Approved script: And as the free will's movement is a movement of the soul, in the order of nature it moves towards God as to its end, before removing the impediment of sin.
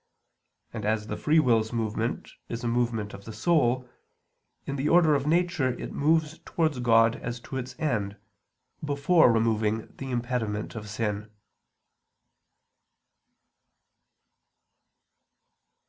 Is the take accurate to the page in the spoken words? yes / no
yes